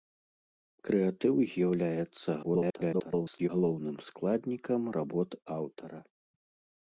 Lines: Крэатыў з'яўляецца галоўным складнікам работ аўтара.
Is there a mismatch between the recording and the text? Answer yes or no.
yes